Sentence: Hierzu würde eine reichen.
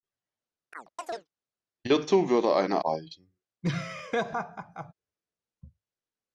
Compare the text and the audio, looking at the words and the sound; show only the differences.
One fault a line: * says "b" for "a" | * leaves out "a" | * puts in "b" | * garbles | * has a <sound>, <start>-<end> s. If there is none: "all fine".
* has a chirp, 0.7-1.3 s
* has a laugh, 3.6-4.9 s